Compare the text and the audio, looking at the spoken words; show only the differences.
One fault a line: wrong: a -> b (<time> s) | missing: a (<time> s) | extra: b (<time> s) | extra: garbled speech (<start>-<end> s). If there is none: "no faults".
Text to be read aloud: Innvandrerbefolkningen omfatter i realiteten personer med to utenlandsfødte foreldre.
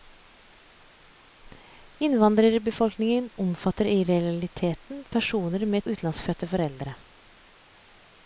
missing: to (5.8 s)